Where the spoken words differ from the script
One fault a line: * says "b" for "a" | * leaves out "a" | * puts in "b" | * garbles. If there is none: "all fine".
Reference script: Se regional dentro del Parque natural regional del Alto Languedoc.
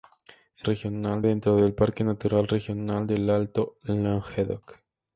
all fine